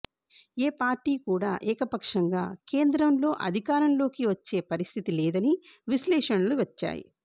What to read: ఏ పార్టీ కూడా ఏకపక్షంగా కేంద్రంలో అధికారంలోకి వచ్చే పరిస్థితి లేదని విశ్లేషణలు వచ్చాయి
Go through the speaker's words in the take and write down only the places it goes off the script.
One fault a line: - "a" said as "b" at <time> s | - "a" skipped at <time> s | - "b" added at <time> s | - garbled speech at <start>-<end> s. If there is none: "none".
none